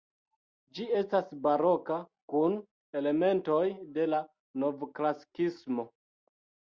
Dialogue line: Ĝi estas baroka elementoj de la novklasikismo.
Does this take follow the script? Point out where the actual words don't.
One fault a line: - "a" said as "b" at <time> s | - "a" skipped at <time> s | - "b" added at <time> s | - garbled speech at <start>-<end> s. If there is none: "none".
- "kun" added at 2.3 s